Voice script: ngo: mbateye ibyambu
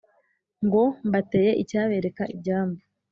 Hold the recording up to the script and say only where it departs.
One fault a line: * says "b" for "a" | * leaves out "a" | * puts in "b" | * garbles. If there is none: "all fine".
* puts in "icyabereka"